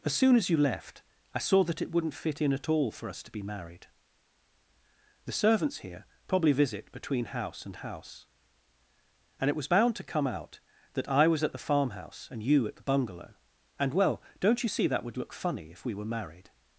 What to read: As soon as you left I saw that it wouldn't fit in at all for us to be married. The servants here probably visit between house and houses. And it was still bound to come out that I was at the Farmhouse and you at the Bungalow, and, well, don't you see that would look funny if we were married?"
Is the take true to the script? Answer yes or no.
no